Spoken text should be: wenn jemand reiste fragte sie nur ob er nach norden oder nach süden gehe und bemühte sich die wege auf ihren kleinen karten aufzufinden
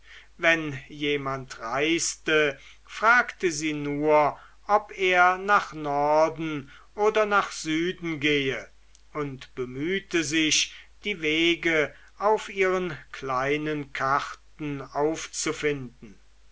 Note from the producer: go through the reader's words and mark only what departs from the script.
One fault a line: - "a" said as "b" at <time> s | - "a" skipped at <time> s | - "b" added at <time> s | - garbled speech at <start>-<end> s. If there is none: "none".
none